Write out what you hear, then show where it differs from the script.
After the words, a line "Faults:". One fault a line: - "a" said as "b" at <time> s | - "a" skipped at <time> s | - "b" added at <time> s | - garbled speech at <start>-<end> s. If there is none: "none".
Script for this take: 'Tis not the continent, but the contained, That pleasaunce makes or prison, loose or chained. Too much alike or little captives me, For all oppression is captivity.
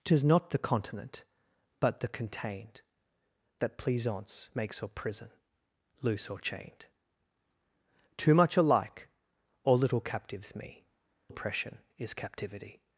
'Tis not the continent, but the contained, That pleasaunce makes or prison, loose or chained. Too much alike or little captives me, Oppression is captivity.
Faults:
- "For all" skipped at 10.8 s